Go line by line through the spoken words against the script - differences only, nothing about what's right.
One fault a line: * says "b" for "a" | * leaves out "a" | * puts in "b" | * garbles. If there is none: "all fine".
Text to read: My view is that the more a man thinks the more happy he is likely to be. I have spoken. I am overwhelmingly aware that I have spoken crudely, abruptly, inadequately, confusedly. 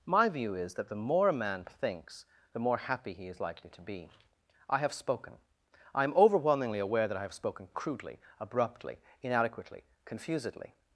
all fine